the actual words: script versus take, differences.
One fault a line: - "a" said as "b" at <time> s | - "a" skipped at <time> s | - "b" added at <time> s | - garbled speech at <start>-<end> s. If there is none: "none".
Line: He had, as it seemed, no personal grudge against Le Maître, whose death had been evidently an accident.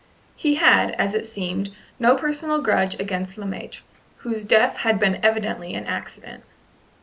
none